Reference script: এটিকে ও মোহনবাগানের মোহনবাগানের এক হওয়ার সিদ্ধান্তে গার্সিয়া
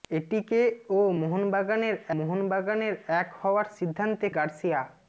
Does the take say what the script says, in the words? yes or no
yes